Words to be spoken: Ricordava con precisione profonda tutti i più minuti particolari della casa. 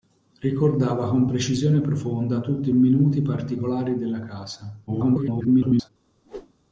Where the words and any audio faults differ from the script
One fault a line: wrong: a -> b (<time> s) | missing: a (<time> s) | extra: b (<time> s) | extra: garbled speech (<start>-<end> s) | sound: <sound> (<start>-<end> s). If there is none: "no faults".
missing: più (2.7 s)
extra: garbled speech (4.9-5.9 s)
sound: whoosh (6.2-6.5 s)